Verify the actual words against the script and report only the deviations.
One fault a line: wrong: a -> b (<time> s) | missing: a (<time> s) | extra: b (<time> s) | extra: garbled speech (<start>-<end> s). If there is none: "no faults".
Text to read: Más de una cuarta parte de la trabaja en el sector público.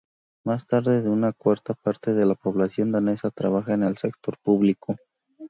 extra: población danesa (2.3 s)